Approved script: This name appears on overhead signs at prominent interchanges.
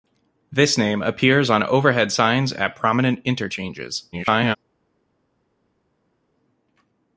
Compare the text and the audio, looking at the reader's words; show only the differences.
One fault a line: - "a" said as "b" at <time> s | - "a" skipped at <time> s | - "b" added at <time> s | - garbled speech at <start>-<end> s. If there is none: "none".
- garbled speech at 4.1-4.6 s